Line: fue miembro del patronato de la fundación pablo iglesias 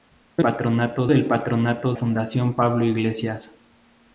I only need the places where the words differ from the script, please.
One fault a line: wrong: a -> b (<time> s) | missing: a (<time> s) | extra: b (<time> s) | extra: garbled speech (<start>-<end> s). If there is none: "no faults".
wrong: miembro -> patronato (0.4 s)
missing: de la (1.9 s)